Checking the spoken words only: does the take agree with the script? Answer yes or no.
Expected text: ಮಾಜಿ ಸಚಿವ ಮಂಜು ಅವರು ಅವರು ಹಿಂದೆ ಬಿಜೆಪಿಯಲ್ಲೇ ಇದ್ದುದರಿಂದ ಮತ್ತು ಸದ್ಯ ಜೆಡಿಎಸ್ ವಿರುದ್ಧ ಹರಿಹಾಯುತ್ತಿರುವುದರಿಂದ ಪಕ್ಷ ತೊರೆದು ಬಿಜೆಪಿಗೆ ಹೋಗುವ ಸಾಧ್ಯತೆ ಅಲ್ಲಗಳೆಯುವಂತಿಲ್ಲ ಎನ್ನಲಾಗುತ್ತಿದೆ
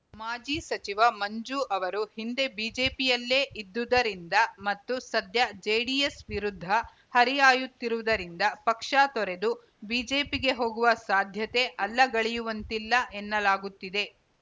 no